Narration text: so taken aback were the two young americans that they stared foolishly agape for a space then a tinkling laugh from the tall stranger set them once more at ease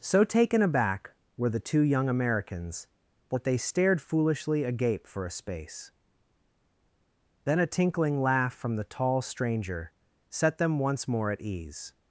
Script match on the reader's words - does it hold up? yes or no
yes